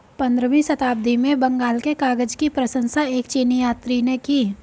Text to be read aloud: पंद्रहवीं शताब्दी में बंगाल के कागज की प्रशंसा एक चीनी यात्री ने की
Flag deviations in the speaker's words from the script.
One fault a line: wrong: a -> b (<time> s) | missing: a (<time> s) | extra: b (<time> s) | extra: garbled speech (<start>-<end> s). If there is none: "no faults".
no faults